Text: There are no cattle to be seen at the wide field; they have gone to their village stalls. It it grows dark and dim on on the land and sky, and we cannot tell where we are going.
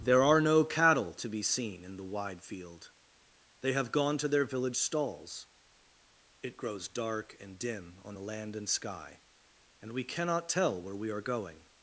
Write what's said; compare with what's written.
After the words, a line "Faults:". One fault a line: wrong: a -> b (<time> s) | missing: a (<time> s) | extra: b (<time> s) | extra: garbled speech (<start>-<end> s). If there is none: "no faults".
There are no cattle to be seen in the wide field; they have gone to their village stalls. It grows dark and dim on the land and sky, and we cannot tell where we are going.
Faults:
wrong: at -> in (1.8 s)
missing: it (6.6 s)
missing: on (8.2 s)